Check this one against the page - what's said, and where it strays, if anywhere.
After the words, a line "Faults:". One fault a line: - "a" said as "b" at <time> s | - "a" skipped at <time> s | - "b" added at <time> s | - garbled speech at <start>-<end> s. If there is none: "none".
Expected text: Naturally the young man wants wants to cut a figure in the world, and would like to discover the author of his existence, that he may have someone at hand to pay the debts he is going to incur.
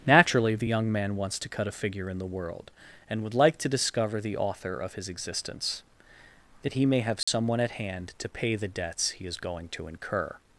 Naturally the young man wants to cut a figure in the world, and would like to discover the author of his existence, that he may have someone at hand to pay the debts he is going to incur.
Faults:
- "wants" skipped at 1.4 s